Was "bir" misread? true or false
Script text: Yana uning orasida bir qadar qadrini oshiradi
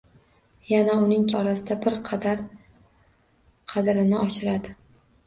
false